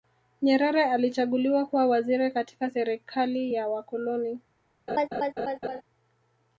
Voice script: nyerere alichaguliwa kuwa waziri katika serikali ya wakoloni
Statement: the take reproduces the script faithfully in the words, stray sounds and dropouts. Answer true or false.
false